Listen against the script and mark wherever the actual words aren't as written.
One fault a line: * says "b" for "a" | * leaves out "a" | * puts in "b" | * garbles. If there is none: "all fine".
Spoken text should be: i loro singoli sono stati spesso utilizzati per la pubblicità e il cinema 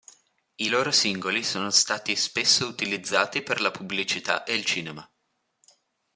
all fine